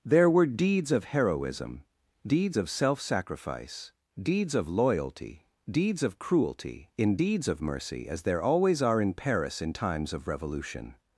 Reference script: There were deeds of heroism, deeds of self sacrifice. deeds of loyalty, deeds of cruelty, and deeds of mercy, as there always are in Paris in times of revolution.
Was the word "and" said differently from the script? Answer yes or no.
yes